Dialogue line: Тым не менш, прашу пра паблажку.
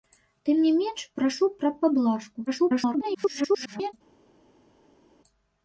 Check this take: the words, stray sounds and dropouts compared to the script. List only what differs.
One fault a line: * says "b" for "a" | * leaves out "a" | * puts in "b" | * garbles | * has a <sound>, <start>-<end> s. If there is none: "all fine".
* garbles